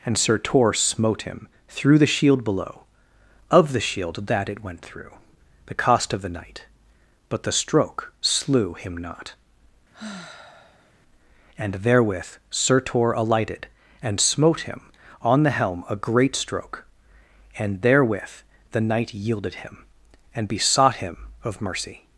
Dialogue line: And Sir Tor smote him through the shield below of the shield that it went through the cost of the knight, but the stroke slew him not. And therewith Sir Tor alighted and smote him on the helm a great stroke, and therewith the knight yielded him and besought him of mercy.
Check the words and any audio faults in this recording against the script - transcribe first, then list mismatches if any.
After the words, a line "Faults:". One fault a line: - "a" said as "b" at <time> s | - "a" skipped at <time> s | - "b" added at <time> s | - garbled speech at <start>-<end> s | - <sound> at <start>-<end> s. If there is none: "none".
And Sir Tor smote him through the shield below of the shield that it went through the cost of the knight, but the stroke slew him not. And therewith Sir Tor alighted and smote him on the helm a great stroke, and therewith the knight yielded him and besought him of mercy.
Faults:
- sigh at 9.9-10.9 s